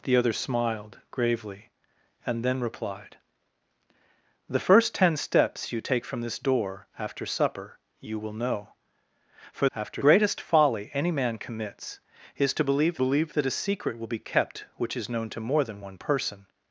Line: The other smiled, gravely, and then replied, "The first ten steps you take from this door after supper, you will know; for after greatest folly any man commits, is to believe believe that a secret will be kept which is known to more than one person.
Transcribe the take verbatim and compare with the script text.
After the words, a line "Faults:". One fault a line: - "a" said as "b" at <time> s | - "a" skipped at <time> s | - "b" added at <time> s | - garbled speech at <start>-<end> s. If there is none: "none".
The other smiled, gravely, and then replied, "The first ten steps you take from this door after supper, you will know; for after greatest folly any man commits, is to believe believe that a secret will be kept which is known to more than one person.
Faults:
none